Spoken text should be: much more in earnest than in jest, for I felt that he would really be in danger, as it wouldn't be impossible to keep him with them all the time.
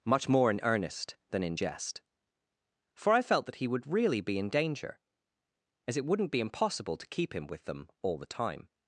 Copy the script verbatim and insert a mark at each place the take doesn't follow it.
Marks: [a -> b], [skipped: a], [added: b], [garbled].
much more in earnest than in jest, for I felt that he would really be in danger, as it wouldn't be impossible to keep him with them all the time.